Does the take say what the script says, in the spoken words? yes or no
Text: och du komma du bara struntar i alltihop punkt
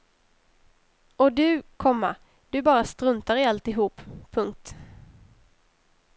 yes